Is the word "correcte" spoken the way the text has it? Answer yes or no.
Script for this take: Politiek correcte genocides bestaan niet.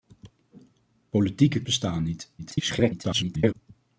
no